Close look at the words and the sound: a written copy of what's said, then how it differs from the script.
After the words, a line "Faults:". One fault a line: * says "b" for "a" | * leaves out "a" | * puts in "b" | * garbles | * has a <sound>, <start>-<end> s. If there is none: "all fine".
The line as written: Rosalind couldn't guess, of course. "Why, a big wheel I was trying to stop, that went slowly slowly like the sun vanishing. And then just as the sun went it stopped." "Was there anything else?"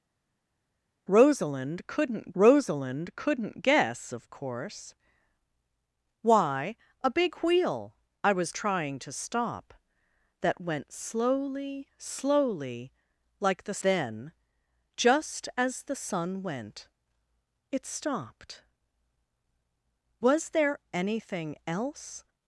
Rosalind couldn't rosalind couldn't guess, of course. "Why, a big wheel I was trying to stop, that went slowly slowly like the then just as the sun went it stopped." "Was there anything else?"
Faults:
* puts in "rosalind couldn't"
* leaves out "sun vanishing And"